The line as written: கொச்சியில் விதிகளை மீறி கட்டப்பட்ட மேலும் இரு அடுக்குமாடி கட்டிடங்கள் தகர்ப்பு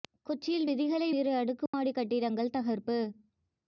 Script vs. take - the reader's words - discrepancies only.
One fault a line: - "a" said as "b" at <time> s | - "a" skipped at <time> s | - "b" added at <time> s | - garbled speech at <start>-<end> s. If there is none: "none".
- "மீறி கட்டப்பட்ட மேலும்" skipped at 1.1 s